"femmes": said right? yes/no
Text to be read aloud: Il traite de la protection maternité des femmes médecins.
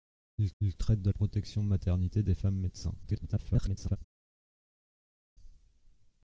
yes